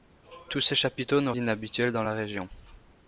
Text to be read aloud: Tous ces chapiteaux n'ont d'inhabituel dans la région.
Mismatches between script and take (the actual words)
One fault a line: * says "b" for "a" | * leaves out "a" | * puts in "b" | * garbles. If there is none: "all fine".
all fine